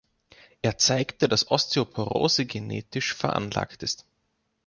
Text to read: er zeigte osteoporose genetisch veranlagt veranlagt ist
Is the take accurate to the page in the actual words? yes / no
no